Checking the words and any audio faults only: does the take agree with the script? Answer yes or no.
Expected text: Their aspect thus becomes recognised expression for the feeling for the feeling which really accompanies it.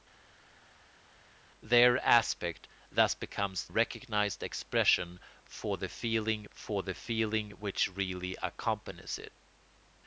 yes